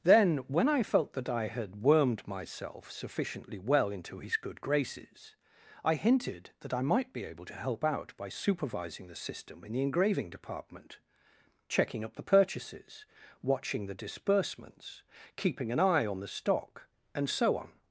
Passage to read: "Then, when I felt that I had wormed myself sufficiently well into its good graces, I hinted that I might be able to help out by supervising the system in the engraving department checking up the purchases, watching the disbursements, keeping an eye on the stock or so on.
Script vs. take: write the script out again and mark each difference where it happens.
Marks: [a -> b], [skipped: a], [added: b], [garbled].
"Then, when I felt that I had wormed myself sufficiently well into [its -> his] good graces, I hinted that I might be able to help out by supervising the system in the engraving department checking up the purchases, watching the disbursements, keeping an eye on the stock [or -> and] so on.